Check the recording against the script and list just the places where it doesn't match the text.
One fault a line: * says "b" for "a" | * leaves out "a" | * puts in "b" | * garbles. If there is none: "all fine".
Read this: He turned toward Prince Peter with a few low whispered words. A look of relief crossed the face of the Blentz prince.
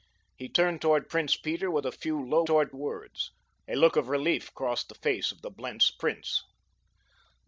* says "toward" for "whispered"